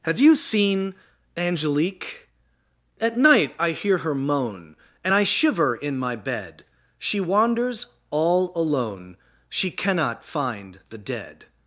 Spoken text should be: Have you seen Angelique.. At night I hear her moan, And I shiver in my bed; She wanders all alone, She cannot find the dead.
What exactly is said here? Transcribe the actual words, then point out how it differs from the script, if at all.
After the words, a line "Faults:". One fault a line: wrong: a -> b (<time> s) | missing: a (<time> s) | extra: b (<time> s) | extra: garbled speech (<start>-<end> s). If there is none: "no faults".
Have you seen Angelique.. At night I hear her moan, And I shiver in my bed; She wanders all alone, She cannot find the dead.
Faults:
no faults